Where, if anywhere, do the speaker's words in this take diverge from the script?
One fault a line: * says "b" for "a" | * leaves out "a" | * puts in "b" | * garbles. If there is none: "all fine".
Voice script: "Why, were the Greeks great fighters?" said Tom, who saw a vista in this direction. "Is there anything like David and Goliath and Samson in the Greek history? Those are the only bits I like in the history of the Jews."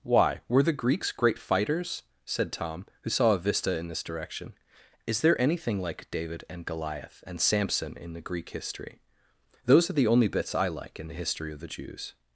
all fine